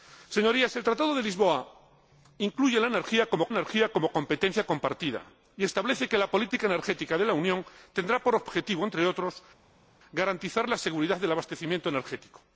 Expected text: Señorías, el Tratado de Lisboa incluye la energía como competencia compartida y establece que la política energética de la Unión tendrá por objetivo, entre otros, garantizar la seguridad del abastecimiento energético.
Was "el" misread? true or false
false